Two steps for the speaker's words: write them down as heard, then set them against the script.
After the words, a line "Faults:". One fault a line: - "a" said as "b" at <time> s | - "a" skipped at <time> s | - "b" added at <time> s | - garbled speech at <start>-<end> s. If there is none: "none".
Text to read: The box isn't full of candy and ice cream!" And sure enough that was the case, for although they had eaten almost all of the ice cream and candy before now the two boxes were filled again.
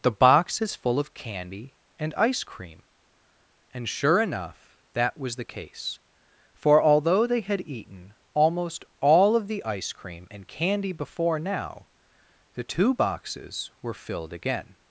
The box is full of candy and ice cream!" And sure enough that was the case, for although they had eaten almost all of the ice cream and candy before now the two boxes were filled again.
Faults:
- "isn't" said as "is" at 0.6 s